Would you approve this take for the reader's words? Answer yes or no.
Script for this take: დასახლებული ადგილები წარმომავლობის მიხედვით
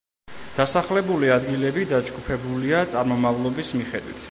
no